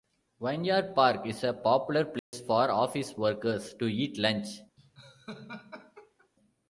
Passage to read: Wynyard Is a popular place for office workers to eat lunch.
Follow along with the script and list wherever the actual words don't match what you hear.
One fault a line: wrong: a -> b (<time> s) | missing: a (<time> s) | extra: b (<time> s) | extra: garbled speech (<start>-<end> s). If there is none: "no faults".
extra: Park (0.9 s)